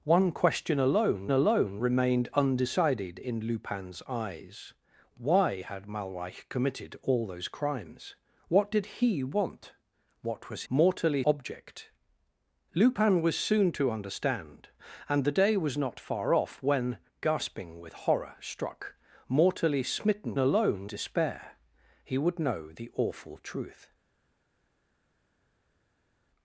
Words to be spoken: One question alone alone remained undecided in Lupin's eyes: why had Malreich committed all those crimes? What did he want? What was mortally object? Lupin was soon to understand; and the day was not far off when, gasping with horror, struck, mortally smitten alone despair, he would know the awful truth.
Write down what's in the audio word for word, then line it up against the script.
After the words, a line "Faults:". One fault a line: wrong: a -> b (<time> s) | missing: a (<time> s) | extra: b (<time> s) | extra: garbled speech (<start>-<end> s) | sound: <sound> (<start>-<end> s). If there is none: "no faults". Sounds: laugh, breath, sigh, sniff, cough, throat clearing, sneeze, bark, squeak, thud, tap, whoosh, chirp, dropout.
One question alone alone remained undecided in Lupin's eyes: why had Malreich committed all those crimes? What did he want? What was mortally object? Lupin was soon to understand; and the day was not far off when, gasping with horror, struck, mortally smitten alone despair, he would know the awful truth.
Faults:
no faults